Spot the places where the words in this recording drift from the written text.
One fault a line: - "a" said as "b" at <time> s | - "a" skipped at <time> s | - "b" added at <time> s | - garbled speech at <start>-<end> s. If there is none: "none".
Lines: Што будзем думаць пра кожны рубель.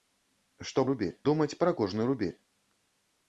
- "будзем" said as "рубель" at 0.9 s